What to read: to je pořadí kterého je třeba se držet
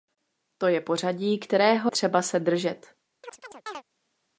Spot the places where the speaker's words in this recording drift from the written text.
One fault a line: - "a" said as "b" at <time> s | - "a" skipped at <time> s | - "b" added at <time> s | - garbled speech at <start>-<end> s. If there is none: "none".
- "je" skipped at 1.9 s